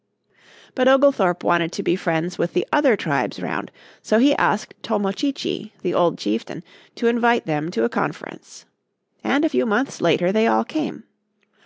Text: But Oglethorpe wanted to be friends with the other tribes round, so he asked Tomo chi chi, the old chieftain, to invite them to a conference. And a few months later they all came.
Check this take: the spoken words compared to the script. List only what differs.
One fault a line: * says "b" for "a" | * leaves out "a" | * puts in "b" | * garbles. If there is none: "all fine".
all fine